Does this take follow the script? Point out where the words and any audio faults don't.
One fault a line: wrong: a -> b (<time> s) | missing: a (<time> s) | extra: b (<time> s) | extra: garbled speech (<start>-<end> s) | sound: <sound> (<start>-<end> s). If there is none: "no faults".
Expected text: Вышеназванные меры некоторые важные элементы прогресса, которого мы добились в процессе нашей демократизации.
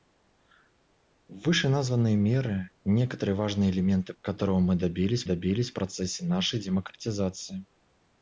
missing: прогресса (4.2 s)
extra: добились (5.2 s)